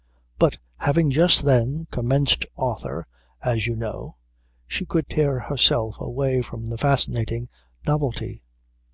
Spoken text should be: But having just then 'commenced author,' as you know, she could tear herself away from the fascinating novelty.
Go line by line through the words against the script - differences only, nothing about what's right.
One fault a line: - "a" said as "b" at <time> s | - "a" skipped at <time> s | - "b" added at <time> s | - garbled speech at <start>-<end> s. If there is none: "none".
none